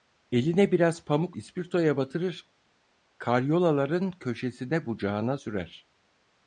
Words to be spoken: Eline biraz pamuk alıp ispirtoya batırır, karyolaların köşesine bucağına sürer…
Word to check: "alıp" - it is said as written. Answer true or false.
false